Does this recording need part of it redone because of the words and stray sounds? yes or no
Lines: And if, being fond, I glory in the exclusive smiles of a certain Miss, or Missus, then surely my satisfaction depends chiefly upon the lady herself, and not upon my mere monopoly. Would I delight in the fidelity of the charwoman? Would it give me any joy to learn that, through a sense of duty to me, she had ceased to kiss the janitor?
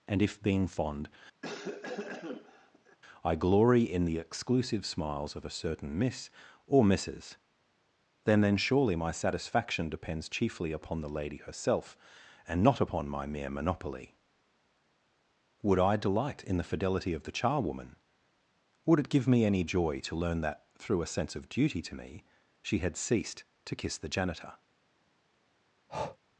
yes